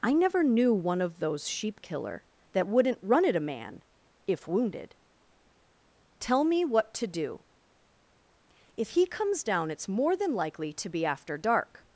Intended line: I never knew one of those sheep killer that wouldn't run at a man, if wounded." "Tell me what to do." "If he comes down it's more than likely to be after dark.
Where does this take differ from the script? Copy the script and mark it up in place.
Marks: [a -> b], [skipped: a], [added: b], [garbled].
I never knew one of those sheep killer that wouldn't run at a man, if wounded." "Tell me what to do." "If he comes down it's more than likely to be after dark.